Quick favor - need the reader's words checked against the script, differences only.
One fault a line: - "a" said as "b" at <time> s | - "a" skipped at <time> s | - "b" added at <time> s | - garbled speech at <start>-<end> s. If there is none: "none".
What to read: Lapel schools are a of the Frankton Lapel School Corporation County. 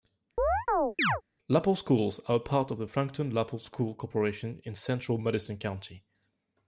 - "part" added at 2.4 s
- "in central Madison" added at 4.6 s